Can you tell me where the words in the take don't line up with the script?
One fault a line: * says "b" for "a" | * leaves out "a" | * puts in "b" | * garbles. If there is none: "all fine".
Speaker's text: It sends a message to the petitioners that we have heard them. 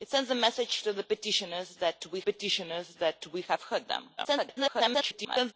* puts in "petitioners that we"
* garbles